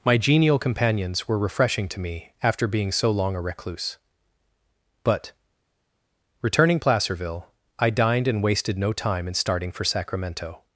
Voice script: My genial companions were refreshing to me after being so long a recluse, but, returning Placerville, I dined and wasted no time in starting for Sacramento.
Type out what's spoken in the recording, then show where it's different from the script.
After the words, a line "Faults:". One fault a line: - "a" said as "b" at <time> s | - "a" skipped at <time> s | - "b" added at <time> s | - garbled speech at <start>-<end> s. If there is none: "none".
My genial companions were refreshing to me after being so long a recluse, but, returning Placerville, I dined and wasted no time in starting for Sacramento.
Faults:
none